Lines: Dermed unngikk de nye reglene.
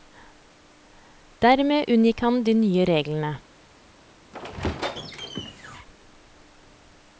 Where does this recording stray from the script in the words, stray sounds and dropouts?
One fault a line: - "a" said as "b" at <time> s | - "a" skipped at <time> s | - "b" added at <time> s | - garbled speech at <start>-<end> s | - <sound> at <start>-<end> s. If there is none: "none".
- "han" added at 2.2 s
- squeak at 4.3-5.9 s